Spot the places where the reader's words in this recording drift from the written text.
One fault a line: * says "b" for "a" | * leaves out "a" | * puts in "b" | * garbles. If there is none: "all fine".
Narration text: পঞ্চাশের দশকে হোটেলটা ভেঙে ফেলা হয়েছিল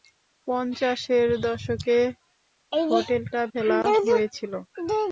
* leaves out "ভেঙে"